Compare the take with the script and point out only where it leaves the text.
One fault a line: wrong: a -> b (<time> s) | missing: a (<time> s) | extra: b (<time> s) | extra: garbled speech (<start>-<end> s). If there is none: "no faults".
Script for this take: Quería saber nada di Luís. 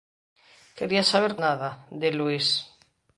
no faults